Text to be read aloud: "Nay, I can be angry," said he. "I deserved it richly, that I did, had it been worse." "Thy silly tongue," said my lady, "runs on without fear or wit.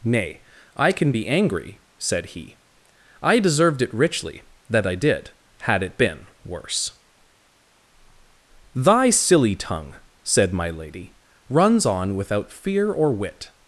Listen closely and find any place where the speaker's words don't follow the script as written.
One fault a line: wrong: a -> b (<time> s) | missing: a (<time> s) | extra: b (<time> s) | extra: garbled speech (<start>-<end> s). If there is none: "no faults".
no faults